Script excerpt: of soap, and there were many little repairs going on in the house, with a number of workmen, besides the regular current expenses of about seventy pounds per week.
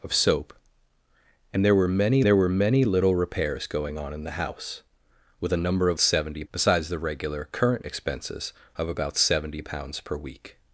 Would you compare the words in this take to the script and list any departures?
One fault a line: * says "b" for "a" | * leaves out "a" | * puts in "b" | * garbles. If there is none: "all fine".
* puts in "there were many"
* says "seventy" for "workmen"